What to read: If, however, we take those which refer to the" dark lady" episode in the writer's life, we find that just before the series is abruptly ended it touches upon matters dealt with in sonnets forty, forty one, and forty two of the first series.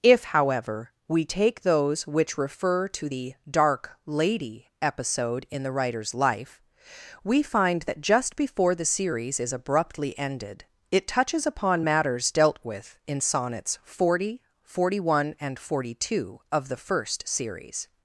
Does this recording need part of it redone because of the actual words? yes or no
no